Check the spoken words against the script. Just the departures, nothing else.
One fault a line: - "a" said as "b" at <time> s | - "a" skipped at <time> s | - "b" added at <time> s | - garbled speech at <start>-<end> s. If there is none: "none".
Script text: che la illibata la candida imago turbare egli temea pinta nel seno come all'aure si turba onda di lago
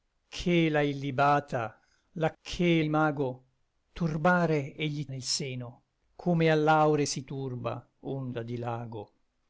- "candida" said as "che" at 2.4 s
- "temea pinta" skipped at 5.1 s